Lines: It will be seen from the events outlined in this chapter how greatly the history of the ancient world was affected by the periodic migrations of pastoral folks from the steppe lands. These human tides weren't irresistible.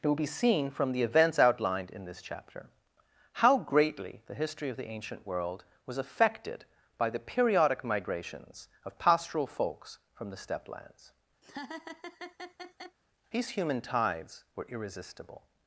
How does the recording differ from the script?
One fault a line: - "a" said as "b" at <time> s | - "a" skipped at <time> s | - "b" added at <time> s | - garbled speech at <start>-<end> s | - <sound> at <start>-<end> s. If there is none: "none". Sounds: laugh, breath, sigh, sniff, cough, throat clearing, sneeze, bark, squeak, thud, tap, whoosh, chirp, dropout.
- laugh at 11.4-13.0 s
- "weren't" said as "were" at 14.6 s